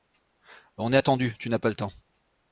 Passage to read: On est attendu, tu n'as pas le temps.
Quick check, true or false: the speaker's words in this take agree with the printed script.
true